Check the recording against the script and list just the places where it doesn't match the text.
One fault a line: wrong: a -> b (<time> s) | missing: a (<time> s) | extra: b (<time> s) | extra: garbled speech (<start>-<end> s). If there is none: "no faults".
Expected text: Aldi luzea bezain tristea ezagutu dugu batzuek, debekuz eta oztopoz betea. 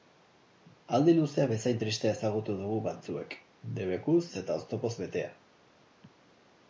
no faults